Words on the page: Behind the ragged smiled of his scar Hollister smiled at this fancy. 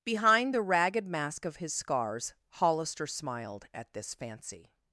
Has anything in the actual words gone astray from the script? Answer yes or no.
yes